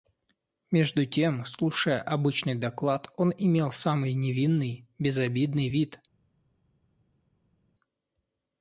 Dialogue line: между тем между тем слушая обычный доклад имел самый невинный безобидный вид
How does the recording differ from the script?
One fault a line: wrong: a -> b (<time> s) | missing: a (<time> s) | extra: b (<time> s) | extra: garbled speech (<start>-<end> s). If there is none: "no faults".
missing: между тем (1.4 s)
extra: он (3.2 s)